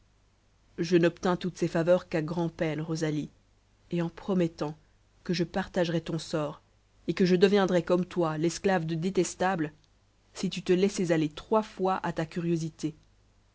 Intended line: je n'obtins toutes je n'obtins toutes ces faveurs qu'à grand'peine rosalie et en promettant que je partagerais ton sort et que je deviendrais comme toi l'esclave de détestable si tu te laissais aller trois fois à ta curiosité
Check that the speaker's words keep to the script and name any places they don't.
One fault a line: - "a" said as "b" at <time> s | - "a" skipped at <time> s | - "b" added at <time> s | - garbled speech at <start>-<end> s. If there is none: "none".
- "je n'obtins toutes" skipped at 1.6 s